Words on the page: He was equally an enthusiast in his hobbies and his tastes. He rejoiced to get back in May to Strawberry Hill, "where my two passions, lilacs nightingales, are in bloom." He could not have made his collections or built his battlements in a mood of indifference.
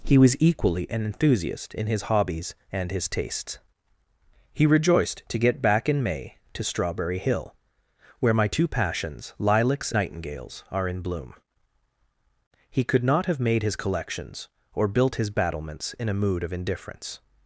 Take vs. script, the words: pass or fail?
pass